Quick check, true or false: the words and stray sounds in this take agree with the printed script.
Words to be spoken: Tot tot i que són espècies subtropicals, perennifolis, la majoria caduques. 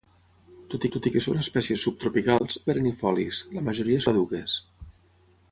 true